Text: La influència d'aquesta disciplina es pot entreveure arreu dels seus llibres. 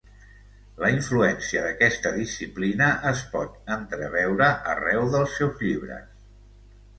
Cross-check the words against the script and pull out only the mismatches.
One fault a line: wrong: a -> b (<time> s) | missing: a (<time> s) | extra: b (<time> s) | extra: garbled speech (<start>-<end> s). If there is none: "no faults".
no faults